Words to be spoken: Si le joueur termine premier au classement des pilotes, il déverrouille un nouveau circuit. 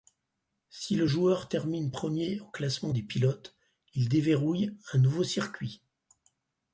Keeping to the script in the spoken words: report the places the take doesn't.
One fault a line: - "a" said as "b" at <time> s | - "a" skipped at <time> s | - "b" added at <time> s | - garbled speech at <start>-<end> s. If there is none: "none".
none